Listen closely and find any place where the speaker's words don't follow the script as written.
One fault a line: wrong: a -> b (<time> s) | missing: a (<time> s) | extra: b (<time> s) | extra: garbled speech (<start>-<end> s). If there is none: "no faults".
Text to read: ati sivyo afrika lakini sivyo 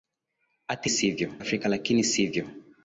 no faults